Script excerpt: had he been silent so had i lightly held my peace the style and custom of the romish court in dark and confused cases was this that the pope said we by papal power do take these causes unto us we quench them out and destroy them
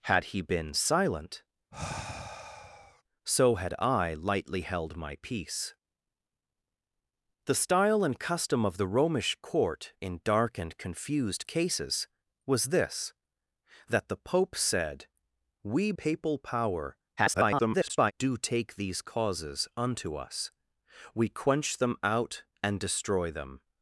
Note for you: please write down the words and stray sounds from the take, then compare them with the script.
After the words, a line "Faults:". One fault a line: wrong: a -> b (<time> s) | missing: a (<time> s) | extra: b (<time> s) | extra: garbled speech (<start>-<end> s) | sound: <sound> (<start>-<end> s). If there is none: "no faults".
had he been silent so had i lightly held my peace the style and custom of the romish court in dark and confused cases was this that the pope said we papal power [garbled] do take these causes unto us we quench them out and destroy them
Faults:
sound: sigh (1.7-3.0 s)
missing: by (15.9 s)
extra: garbled speech (17.2-18.1 s)